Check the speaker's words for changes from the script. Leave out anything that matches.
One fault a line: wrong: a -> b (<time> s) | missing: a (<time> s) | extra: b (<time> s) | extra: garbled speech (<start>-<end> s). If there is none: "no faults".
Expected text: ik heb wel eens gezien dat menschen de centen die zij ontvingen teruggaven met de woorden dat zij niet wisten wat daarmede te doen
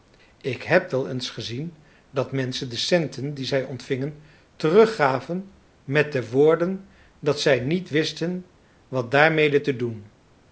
no faults